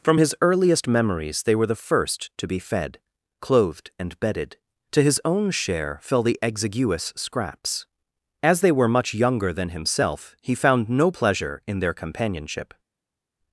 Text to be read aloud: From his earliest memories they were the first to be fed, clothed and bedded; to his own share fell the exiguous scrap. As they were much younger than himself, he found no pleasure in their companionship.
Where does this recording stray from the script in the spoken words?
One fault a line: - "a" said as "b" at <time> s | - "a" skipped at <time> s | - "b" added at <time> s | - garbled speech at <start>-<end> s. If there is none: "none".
- "scrap" said as "scraps" at 7.2 s